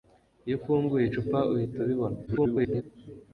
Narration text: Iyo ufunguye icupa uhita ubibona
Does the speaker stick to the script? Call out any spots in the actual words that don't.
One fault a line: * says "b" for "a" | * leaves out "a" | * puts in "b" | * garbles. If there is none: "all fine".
* garbles